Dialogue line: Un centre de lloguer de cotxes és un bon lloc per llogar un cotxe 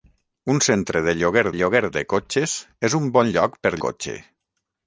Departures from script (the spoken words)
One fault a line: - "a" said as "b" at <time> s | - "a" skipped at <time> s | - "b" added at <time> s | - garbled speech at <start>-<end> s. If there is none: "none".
- "lloguer" added at 1.6 s
- "llogar un" skipped at 3.8 s